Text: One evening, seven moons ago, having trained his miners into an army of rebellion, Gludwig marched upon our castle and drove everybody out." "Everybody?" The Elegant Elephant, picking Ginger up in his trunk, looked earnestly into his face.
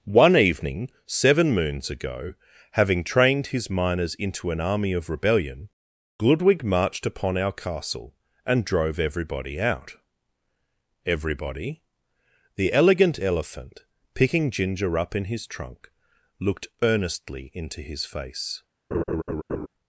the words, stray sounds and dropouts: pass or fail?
fail